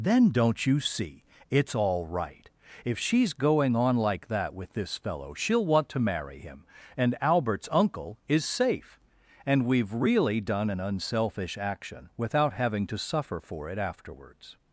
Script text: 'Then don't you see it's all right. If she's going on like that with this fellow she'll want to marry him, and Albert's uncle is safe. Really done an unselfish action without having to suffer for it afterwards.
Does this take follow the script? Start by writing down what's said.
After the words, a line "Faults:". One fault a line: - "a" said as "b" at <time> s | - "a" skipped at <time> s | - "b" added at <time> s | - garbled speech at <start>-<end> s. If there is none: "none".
'Then don't you see it's all right. If she's going on like that with this fellow she'll want to marry him, and Albert's uncle is safe. And we've really done an unselfish action without having to suffer for it afterwards.
Faults:
- "And we've" added at 9.4 s